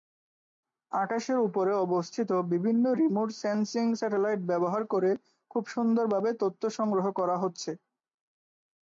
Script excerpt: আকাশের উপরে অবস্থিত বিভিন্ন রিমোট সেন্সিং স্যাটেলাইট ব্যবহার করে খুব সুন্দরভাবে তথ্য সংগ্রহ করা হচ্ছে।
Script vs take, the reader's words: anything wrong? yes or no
no